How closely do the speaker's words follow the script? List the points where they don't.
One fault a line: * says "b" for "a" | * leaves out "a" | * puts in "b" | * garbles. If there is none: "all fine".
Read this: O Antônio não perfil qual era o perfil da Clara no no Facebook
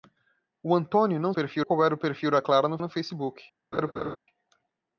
all fine